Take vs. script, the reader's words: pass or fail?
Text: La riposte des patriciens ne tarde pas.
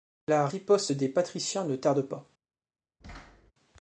pass